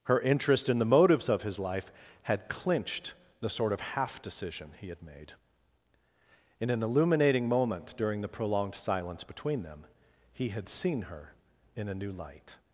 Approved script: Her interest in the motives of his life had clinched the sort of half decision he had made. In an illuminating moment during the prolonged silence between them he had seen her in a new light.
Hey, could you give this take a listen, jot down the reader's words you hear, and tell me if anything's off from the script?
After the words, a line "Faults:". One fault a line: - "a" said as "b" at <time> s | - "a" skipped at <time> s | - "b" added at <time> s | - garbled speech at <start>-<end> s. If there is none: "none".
Her interest in the motives of his life had clinched the sort of half decision he had made. In an illuminating moment during the prolonged silence between them he had seen her in a new light.
Faults:
none